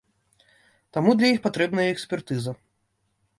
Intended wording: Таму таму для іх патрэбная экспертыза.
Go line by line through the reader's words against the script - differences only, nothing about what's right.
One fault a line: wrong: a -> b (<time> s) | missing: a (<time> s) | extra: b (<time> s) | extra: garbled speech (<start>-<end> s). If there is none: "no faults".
missing: таму (1.1 s)